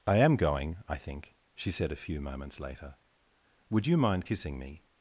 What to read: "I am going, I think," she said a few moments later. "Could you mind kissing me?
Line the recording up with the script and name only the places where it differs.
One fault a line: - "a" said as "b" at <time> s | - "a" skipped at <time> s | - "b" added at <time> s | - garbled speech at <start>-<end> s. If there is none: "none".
- "Could" said as "Would" at 3.7 s